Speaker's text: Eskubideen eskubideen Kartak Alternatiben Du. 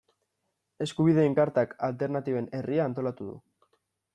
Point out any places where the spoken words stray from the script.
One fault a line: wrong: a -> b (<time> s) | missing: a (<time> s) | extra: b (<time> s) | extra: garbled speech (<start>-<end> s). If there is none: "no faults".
missing: eskubideen (1.4 s)
extra: Herria antolatu (2.6 s)